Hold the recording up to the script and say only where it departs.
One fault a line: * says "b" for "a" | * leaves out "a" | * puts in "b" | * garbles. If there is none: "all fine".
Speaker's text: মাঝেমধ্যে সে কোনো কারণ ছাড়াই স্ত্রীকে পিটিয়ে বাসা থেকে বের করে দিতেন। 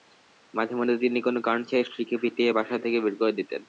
* says "তিনি" for "সে"